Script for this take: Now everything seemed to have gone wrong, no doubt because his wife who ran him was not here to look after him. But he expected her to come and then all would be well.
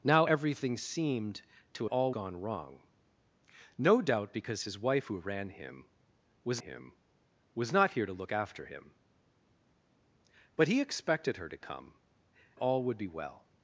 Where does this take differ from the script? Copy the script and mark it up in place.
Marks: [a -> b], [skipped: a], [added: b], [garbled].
Now everything seemed to [have -> all] gone wrong, no doubt because his wife who ran him was [added: him was] not here to look after him. But he expected her to come [skipped: and then] all would be well.